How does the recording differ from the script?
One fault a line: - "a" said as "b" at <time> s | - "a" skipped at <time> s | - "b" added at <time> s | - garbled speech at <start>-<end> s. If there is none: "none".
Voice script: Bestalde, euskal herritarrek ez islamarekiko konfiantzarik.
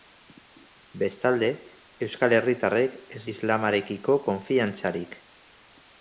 none